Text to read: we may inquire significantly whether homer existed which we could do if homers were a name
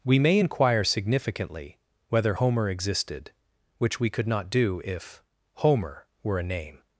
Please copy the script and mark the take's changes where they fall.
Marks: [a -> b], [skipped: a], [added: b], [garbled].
we may inquire significantly whether homer existed which we could [added: not] do if [homers -> homer] were a name